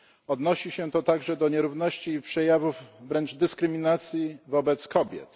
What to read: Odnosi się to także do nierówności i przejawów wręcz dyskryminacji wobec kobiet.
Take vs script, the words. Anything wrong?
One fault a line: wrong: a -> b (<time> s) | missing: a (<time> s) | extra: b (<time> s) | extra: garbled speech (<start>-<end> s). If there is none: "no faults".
no faults